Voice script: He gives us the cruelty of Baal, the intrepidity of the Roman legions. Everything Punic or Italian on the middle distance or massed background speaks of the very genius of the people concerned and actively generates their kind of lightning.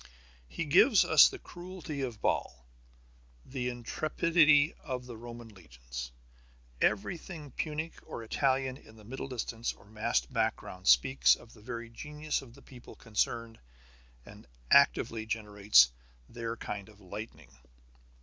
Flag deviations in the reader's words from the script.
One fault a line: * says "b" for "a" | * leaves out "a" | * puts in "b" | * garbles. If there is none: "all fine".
* says "in" for "on"